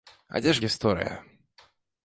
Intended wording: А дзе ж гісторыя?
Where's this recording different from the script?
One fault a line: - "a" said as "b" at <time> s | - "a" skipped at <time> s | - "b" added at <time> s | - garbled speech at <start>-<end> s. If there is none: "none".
none